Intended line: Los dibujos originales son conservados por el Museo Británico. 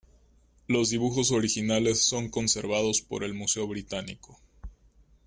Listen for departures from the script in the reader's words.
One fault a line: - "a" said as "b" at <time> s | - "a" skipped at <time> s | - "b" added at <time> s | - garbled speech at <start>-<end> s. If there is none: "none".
none